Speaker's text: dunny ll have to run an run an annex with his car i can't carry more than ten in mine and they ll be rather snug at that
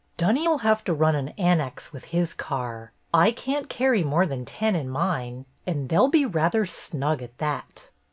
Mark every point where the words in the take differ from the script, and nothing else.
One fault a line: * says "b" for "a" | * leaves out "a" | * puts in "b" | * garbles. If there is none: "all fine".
* leaves out "run an"